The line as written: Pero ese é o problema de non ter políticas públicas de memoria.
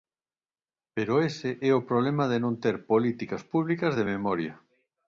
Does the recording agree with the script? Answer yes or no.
yes